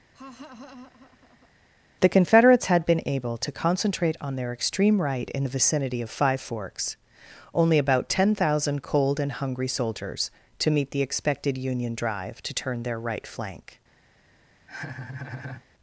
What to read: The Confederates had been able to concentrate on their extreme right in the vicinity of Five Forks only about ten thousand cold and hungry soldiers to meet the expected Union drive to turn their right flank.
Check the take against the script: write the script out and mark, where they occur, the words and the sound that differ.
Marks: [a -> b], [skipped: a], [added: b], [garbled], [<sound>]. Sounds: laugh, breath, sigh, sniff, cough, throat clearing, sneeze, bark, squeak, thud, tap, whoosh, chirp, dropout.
[laugh] The Confederates had been able to concentrate on their extreme right in the vicinity of Five Forks only about ten thousand cold and hungry soldiers to meet the expected Union drive to turn their right flank. [laugh]